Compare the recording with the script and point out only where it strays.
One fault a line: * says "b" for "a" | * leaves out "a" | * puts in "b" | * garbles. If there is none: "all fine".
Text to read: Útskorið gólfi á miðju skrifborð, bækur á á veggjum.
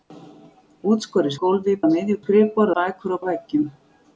all fine